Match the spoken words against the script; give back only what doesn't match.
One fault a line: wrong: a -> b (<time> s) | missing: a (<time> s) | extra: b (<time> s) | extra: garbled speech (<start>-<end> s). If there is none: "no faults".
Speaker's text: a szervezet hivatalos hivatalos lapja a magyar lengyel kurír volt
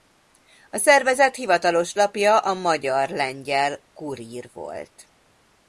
missing: hivatalos (1.9 s)